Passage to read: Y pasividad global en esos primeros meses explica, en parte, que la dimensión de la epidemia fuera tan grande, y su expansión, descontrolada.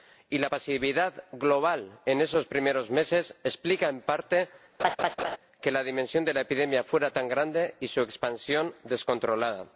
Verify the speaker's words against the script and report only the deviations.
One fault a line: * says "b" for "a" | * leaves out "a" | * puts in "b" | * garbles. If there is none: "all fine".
* puts in "la"